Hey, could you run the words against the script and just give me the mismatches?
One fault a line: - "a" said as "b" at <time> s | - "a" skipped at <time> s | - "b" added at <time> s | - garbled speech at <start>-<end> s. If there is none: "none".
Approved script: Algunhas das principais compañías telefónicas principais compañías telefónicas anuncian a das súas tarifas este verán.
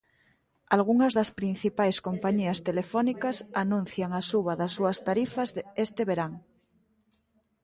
- "principais compañías telefónicas" skipped at 3.4 s
- "suba" added at 4.3 s